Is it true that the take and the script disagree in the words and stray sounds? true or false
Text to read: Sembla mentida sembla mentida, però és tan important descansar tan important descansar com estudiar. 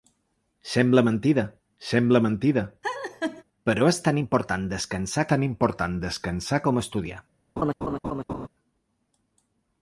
true